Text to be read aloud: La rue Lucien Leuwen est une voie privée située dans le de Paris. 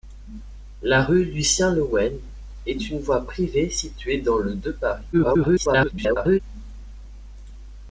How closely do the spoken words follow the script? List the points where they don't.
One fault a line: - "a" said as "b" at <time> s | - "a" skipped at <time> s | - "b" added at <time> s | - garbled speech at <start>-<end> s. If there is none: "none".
- garbled speech at 5.1-6.4 s